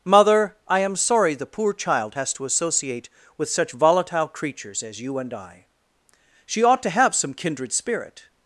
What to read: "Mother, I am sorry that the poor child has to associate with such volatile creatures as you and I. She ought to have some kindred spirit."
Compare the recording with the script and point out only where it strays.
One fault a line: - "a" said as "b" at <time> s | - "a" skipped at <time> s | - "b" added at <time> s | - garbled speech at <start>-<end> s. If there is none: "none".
- "that" skipped at 1.4 s